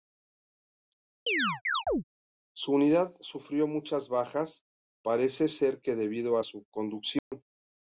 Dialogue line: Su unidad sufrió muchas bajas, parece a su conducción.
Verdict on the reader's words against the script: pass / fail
fail